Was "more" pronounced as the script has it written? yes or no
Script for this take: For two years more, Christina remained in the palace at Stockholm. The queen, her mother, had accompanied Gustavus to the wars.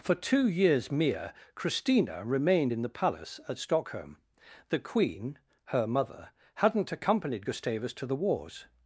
no